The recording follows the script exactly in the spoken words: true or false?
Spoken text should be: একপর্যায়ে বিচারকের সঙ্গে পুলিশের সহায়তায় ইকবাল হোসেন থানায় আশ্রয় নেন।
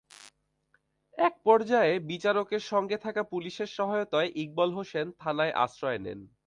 false